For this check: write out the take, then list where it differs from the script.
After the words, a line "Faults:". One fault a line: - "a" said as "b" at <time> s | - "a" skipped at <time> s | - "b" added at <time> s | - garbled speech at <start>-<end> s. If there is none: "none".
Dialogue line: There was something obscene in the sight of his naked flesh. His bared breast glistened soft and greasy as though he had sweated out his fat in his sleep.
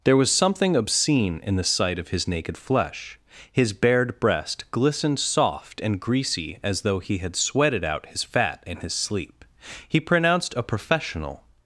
There was something obscene in the sight of his naked flesh. His bared breast glistened soft and greasy as though he had sweated out his fat in his sleep. He pronounced a professional
Faults:
- "He pronounced a professional" added at 9.9 s